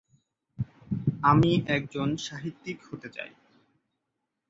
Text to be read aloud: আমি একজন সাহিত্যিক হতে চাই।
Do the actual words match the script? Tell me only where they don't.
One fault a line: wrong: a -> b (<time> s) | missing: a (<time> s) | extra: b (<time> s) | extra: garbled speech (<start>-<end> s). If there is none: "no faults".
no faults